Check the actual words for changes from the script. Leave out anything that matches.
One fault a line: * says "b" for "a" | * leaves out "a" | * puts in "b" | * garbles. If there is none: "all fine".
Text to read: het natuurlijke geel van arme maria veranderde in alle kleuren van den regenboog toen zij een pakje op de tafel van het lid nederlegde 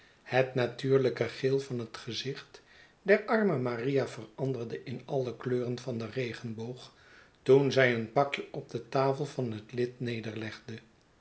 * puts in "het gezicht der"